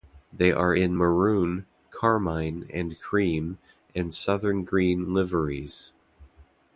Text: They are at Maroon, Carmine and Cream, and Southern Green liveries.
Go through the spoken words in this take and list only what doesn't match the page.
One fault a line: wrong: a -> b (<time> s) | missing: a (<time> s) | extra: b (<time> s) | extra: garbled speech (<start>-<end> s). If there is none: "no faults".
wrong: at -> in (0.7 s)